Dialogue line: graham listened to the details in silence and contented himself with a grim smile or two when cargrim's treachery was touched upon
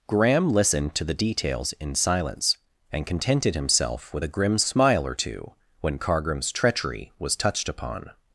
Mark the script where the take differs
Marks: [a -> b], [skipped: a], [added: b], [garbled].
graham listened to the details in silence and contented himself with a grim smile or two when cargrim's treachery was touched upon